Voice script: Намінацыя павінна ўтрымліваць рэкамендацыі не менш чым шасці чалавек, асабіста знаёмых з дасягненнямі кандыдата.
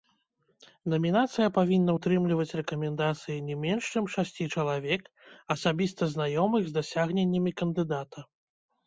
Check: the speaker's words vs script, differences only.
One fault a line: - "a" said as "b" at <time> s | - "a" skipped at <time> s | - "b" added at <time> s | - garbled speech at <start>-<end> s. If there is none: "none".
none